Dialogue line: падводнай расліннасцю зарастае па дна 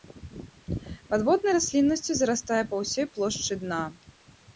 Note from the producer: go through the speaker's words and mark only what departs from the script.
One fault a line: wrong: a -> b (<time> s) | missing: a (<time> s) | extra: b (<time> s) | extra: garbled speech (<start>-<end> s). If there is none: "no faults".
extra: ўсёй плошчы (2.8 s)